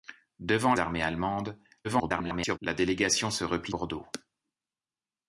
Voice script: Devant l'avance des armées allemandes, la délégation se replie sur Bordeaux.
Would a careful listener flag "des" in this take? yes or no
yes